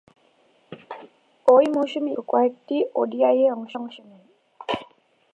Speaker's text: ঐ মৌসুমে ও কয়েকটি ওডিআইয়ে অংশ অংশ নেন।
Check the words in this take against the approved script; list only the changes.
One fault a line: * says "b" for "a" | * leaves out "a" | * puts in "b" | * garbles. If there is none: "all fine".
all fine